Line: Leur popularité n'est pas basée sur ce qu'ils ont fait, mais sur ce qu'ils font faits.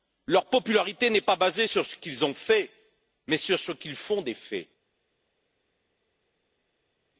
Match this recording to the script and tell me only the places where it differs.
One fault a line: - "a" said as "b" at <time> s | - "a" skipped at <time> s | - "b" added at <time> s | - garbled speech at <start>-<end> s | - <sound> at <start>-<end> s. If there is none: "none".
- "des" added at 4.2 s